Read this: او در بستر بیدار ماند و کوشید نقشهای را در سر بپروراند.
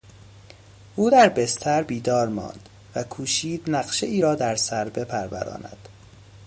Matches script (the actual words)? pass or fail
pass